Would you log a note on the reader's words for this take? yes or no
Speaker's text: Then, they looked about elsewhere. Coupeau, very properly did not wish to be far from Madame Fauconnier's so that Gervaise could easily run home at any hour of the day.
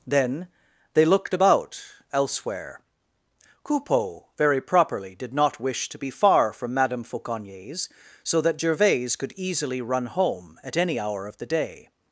no